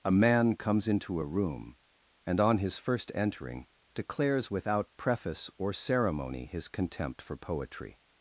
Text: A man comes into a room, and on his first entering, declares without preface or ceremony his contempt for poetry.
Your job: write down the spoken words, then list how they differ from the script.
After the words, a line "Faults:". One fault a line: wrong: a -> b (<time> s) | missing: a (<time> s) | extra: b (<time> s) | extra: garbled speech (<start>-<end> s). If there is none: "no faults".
A man comes into a room, and on his first entering, declares without preface or ceremony his contempt for poetry.
Faults:
no faults